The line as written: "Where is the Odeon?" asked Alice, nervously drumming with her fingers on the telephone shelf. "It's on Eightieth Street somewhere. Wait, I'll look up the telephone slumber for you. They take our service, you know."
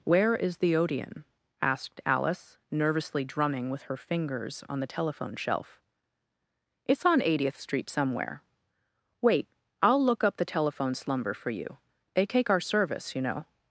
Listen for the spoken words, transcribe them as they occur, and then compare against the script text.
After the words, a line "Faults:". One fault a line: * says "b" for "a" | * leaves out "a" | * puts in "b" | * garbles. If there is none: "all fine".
"Where is the Odeon?" asked Alice, nervously drumming with her fingers on the telephone shelf. "It's on Eightieth Street somewhere. Wait, I'll look up the telephone slumber for you. They take our service, you know."
Faults:
all fine